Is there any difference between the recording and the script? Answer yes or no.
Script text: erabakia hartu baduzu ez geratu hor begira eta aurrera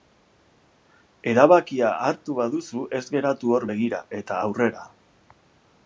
no